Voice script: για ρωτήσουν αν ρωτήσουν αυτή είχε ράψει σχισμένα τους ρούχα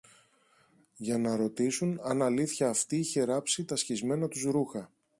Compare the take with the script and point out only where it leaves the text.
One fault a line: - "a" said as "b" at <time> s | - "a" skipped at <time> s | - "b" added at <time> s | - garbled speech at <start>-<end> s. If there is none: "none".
- "να" added at 1.2 s
- "ρωτήσουν" said as "αλήθεια" at 2.2 s
- "τα" added at 3.6 s